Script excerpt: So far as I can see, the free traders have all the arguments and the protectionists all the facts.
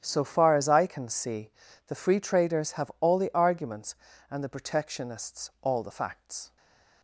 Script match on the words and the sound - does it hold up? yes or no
yes